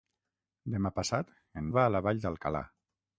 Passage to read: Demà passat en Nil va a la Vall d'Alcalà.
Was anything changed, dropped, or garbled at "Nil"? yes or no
yes